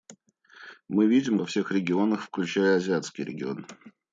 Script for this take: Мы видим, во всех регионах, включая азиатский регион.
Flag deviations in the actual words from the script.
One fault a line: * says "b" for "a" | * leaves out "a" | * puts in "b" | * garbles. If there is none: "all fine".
all fine